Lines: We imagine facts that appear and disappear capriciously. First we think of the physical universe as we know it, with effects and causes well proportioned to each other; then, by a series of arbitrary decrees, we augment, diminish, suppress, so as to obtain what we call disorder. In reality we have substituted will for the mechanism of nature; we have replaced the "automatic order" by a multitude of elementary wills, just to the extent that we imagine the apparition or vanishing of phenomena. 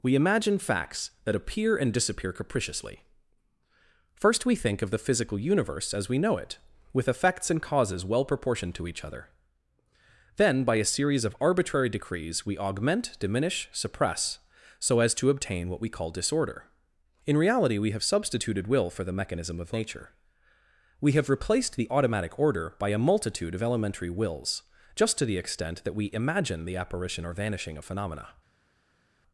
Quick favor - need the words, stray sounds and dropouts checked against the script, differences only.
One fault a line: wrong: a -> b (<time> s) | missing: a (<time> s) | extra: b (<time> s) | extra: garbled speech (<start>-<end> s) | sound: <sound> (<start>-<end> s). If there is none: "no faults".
no faults